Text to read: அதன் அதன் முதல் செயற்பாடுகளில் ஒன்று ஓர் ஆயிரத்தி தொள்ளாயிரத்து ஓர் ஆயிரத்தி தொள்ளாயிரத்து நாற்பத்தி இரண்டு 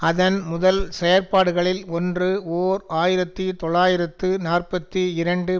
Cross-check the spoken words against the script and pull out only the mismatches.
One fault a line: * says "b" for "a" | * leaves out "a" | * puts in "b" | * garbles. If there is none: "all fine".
* leaves out "அதன்"
* leaves out "ஓர் ஆயிரத்தி தொள்ளாயிரத்து"